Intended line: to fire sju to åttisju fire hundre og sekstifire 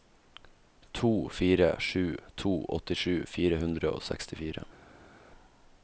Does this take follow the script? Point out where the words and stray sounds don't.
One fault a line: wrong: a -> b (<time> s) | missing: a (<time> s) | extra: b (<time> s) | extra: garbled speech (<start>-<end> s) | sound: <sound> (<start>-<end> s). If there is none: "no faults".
no faults